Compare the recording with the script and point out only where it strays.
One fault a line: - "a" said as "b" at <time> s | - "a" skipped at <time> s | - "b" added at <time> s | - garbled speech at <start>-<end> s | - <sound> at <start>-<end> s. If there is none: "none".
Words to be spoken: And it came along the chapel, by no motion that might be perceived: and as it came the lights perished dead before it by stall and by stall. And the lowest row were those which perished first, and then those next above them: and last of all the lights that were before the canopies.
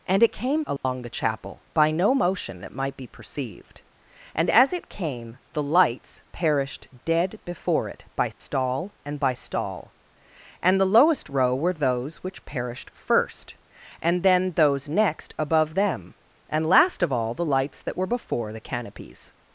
- dropout at 0.8-0.8 s
- dropout at 8.3-8.4 s